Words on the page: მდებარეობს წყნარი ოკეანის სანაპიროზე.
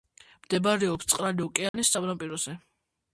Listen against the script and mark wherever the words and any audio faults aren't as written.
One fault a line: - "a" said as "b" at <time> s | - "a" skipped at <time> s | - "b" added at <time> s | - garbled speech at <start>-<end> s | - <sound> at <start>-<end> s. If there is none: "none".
- dropout at 1.7-1.7 s